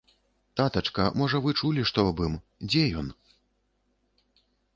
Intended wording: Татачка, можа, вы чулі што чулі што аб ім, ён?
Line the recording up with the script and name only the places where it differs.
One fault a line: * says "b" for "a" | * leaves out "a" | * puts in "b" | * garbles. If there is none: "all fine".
* leaves out "чулі што"
* puts in "дзе"